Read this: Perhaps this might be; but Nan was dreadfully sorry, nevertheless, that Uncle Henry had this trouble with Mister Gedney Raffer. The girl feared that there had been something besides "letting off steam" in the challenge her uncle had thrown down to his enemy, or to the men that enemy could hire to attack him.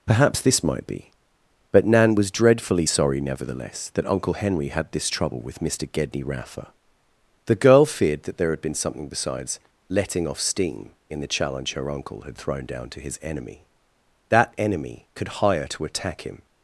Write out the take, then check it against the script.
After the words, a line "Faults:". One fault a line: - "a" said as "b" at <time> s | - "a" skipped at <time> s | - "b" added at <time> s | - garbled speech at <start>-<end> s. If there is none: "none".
Perhaps this might be; but Nan was dreadfully sorry, nevertheless, that Uncle Henry had this trouble with Mister Gedney Raffer. The girl feared that there had been something besides "letting off steam" in the challenge her uncle had thrown down to his enemy, that enemy could hire to attack him.
Faults:
- "or to the men" skipped at 13.6 s